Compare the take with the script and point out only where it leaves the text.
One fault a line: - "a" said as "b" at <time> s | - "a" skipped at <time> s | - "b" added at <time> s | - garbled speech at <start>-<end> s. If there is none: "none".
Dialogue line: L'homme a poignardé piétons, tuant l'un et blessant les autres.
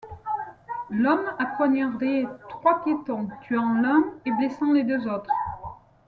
- "trois" added at 2.5 s
- "deux" added at 4.8 s